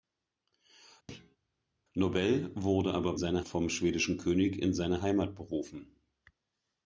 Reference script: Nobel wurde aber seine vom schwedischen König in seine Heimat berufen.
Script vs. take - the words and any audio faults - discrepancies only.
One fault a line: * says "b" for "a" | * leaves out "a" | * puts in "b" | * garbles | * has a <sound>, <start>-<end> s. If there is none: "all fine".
* has a thud, 1.1-1.4 s